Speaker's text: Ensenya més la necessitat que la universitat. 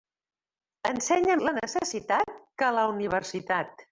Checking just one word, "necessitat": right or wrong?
right